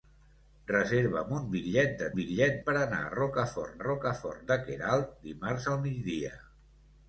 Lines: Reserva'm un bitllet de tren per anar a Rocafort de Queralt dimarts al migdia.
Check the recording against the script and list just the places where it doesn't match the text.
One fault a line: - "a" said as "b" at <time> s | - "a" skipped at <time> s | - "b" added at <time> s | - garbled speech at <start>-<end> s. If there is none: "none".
- "tren" said as "bitllet" at 2.2 s
- "Rocafort" added at 3.8 s